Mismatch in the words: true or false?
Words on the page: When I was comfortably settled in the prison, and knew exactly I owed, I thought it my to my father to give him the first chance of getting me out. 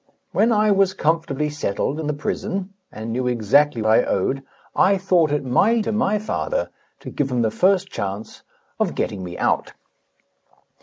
false